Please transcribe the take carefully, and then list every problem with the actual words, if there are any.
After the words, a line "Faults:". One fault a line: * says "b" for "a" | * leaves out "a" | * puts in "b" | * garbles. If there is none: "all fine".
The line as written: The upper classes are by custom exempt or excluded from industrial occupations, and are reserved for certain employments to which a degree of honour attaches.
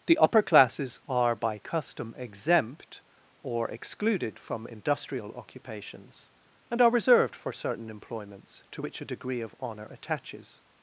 The upper classes are by custom exempt or excluded from industrial occupations, and are reserved for certain employments to which a degree of honour attaches.
Faults:
all fine